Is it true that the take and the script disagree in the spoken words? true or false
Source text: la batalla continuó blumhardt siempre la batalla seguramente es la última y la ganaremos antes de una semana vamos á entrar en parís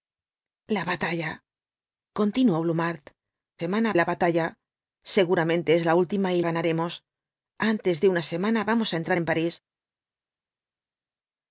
true